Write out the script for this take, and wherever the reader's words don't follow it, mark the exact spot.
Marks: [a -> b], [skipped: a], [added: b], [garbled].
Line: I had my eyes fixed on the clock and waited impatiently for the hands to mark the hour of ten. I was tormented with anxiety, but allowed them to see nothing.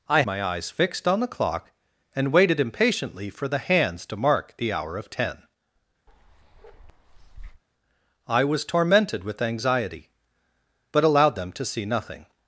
I [skipped: had] my eyes fixed on the clock and waited impatiently for the hands to mark the hour of ten. I was tormented with anxiety, but allowed them to see nothing.